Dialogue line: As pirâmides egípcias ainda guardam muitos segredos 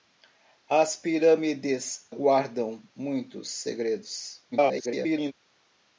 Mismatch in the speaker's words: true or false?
true